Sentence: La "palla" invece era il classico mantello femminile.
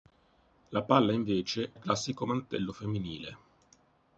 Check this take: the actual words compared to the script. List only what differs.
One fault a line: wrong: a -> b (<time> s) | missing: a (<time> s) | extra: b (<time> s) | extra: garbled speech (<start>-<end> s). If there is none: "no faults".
missing: era (1.7 s)